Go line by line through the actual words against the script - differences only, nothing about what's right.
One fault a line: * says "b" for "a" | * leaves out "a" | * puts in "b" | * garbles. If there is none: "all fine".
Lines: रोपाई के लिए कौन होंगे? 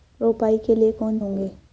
all fine